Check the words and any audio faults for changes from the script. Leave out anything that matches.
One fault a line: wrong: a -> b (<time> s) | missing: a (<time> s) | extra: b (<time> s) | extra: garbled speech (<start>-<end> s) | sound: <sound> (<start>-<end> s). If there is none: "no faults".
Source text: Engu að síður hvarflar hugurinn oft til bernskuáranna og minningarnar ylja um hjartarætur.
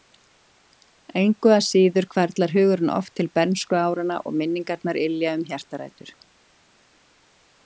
no faults